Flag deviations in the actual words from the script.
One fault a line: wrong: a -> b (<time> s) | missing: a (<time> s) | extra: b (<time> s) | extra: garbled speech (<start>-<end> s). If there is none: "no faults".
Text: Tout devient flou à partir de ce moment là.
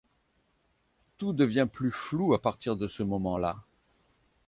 extra: plus (1.7 s)